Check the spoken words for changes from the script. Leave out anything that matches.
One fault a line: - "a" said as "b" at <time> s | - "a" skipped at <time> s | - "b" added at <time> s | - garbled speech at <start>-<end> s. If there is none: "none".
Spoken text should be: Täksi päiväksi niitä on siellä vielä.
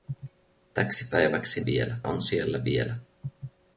- "niitä" said as "vielä" at 1.7 s